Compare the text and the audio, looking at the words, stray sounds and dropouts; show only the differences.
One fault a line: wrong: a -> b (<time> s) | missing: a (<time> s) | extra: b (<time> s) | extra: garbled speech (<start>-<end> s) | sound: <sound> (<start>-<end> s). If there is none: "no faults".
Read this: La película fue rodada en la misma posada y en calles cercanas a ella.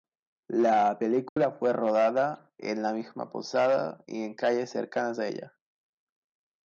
sound: dropout (1.3-1.4 s)